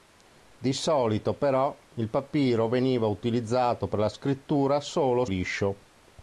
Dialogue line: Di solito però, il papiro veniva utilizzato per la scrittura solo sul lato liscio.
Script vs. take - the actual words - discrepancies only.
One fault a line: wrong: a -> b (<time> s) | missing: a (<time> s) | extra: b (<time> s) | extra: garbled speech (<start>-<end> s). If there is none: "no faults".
missing: sul lato (5.2 s)